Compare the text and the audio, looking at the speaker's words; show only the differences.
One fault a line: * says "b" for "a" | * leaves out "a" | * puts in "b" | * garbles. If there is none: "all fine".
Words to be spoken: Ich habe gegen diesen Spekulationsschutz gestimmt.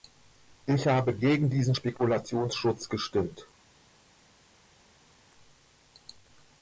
all fine